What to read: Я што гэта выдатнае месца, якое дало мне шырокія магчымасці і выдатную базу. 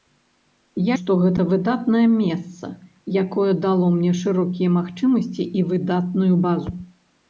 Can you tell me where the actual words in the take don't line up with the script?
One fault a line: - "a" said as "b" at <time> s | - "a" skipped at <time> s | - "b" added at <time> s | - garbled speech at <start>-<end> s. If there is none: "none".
none